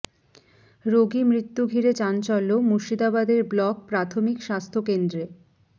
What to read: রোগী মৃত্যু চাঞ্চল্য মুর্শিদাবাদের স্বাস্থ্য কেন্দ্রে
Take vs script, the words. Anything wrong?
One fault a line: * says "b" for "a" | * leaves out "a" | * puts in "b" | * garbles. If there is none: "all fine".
* puts in "ঘিরে"
* puts in "ব্লক প্রাথমিক"